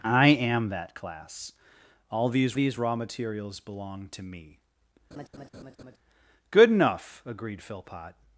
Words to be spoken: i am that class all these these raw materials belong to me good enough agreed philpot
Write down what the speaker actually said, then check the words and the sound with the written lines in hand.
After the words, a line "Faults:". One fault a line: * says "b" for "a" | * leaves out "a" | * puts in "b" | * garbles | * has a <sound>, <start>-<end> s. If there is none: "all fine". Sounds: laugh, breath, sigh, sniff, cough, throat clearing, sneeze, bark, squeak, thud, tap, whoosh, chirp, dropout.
i am that class all these these raw materials belong to me good enough agreed philpot
Faults:
* has a laugh, 5.1-6.0 s